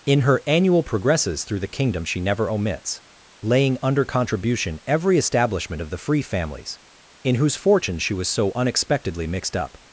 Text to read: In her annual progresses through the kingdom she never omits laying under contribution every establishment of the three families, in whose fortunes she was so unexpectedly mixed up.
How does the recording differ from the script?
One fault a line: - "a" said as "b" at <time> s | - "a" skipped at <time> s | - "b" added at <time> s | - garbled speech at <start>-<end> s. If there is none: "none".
- "three" said as "free" at 5.9 s